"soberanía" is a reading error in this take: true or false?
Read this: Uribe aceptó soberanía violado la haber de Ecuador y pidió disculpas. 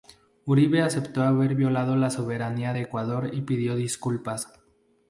true